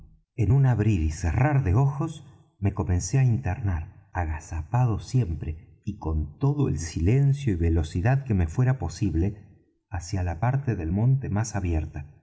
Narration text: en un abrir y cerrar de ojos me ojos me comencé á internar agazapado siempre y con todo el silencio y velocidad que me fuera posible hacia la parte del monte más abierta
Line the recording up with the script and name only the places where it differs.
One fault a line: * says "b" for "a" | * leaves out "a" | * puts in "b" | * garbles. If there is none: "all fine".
* leaves out "ojos me"